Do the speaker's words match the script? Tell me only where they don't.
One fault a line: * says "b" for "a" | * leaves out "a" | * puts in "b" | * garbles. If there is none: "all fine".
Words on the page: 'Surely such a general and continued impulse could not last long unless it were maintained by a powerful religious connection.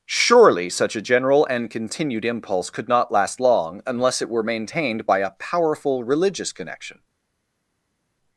all fine